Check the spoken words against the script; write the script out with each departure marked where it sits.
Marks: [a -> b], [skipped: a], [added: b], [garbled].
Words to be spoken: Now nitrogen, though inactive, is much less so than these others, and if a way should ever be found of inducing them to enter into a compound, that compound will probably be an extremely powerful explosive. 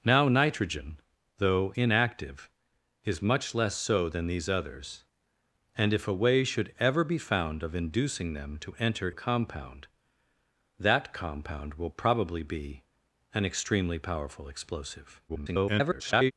Now nitrogen, though inactive, is much less so than these others, and if a way should ever be found of inducing them to enter [skipped: into] a compound, that compound will probably be an extremely powerful explosive. [garbled]